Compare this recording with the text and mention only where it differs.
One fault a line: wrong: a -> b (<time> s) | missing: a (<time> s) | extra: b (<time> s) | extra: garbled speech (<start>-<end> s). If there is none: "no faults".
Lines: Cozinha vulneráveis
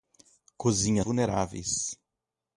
no faults